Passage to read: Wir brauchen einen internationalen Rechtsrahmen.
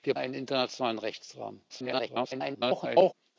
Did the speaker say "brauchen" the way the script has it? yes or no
no